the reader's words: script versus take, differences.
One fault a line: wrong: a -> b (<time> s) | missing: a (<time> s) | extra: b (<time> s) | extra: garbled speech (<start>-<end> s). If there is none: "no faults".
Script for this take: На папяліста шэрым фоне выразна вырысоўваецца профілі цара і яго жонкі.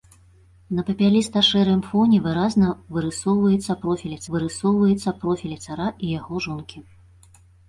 extra: вырысоўваецца профілі (4.4 s)